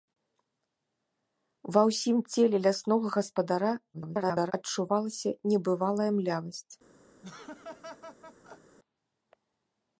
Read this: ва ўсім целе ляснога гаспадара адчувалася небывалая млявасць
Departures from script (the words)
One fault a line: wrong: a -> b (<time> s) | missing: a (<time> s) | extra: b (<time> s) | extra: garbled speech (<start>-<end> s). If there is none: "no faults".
extra: garbled speech (3.9-4.5 s)